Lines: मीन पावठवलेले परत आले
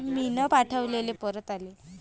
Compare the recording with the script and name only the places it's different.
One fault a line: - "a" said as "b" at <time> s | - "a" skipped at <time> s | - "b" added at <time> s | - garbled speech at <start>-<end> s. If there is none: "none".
none